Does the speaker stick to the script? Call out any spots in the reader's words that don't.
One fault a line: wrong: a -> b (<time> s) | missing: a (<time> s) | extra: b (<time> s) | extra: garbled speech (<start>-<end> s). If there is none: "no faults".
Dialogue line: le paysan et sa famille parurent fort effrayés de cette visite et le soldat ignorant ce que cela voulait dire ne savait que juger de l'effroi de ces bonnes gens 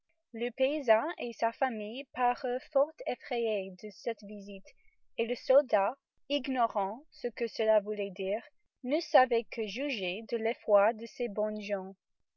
no faults